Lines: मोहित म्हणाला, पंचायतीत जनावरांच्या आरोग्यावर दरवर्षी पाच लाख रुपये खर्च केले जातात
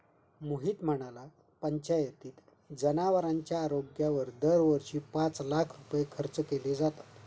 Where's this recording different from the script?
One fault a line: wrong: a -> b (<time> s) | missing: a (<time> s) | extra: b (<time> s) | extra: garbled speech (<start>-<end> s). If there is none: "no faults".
no faults